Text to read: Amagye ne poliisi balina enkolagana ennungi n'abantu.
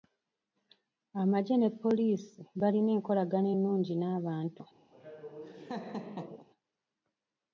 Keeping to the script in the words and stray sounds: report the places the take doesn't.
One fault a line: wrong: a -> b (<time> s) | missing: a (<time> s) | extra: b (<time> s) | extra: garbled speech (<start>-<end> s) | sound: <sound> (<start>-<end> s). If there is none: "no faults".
sound: laugh (4.9-6.5 s)